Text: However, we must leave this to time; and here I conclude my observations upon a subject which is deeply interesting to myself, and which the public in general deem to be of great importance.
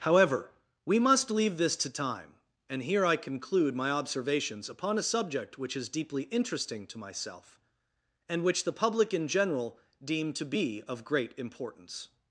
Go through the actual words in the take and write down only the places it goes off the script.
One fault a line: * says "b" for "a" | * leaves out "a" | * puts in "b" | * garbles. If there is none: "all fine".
all fine